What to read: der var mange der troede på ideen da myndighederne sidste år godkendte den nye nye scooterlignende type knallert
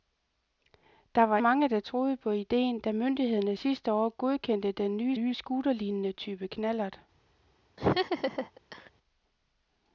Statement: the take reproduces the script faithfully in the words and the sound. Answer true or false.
false